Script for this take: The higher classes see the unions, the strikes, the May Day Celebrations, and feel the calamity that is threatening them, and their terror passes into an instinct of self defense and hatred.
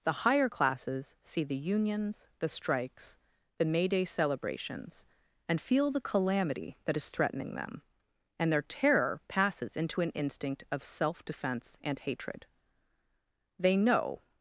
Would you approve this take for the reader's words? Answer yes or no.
no